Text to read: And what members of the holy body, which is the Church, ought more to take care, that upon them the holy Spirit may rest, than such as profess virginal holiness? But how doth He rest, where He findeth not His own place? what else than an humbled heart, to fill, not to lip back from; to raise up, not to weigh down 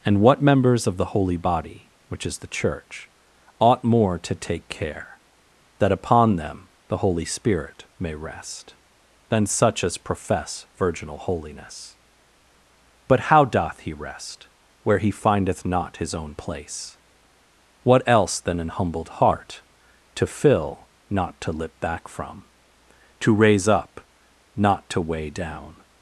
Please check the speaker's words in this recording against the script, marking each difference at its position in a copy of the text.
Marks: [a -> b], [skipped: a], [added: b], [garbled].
And what members of the holy body, which is the Church, ought more to take care, that upon them the holy Spirit may rest, than such as profess virginal holiness? But how doth He rest, where He findeth not His own place? what else than an humbled heart, to fill, not to lip back from; to raise up, not to weigh down